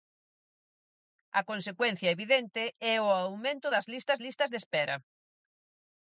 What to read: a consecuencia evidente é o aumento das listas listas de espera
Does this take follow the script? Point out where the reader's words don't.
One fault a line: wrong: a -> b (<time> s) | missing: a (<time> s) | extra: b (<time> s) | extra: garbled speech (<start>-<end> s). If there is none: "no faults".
no faults